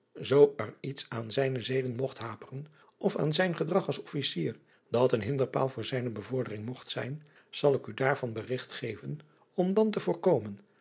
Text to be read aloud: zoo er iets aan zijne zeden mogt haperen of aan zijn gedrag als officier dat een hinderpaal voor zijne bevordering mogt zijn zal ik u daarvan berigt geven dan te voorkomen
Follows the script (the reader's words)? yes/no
no